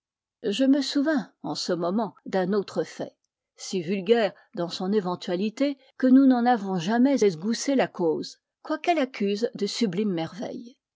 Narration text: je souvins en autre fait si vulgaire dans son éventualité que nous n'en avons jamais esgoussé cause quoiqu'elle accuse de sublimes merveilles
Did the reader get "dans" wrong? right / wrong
right